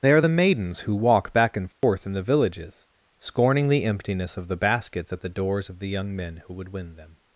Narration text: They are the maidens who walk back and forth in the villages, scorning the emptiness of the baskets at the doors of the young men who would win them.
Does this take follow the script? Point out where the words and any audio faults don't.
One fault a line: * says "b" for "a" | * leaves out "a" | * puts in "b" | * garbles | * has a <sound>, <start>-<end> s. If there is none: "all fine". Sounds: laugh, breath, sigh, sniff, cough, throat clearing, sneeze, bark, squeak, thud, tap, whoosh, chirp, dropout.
* has a dropout, 1.7-1.8 s